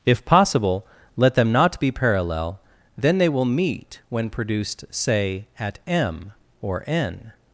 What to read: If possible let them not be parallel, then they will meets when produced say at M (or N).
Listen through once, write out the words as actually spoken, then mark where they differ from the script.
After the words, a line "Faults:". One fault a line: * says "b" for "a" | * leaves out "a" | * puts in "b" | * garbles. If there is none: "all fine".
If possible let them not be parallel, then they will meet when produced say at M (or N).
Faults:
* says "meet" for "meets"